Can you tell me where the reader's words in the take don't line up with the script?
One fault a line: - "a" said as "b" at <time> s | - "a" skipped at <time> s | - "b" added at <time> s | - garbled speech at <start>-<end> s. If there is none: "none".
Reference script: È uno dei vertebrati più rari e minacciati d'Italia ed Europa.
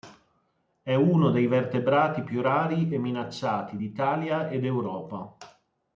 none